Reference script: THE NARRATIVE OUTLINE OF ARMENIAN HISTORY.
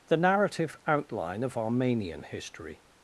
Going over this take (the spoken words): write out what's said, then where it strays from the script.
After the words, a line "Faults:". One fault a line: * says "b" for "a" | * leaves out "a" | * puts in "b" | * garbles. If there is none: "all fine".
THE NARRATIVE OUTLINE OF ARMENIAN HISTORY.
Faults:
all fine